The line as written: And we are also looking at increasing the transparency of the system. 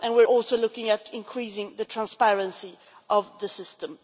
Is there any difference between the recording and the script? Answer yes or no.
no